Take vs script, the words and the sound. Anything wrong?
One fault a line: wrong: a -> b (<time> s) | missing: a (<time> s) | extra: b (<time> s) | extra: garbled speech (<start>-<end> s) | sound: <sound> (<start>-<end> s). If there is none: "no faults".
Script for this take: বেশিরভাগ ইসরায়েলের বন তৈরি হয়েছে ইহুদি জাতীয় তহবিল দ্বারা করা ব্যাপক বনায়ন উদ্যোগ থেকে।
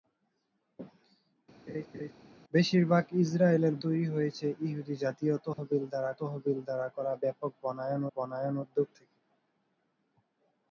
sound: laugh (1.7-2.1 s)
missing: বন (3.7 s)
sound: dropout (5.5-5.6 s)
extra: তহবিল দ্বারা (6.2 s)
extra: বনায়ন (8.2 s)